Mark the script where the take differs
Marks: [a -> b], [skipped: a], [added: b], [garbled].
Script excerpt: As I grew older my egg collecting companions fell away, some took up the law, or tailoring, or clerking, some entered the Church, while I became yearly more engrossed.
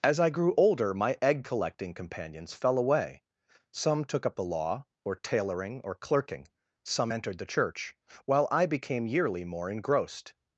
As I grew older my egg collecting companions fell away, some took up the law, or tailoring, or clerking, some entered the Church, while I became yearly more engrossed.